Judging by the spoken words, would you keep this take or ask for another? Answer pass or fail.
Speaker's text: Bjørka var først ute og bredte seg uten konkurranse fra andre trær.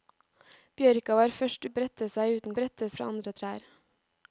fail